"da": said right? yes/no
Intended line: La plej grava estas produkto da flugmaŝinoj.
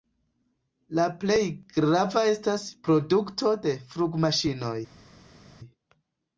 no